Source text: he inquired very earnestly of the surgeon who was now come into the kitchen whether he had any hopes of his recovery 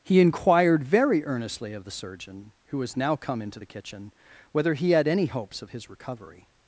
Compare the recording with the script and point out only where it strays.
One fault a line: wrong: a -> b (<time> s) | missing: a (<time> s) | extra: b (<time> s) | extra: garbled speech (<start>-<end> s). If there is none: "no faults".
no faults